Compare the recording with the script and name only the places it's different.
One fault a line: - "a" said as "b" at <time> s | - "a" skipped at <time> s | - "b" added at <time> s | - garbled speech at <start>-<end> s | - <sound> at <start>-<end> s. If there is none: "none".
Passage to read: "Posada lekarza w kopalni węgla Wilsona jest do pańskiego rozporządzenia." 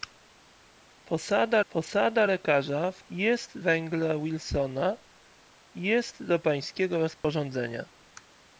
- "posada" added at 1.7 s
- "kopalni" said as "jest" at 3.1 s
- dropout at 7.2-7.2 s